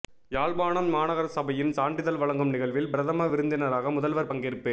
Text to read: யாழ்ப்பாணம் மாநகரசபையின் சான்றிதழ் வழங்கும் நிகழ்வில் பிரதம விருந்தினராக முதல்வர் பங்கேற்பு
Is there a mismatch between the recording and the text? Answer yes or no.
no